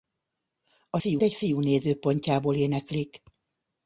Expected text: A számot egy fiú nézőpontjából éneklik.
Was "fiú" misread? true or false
false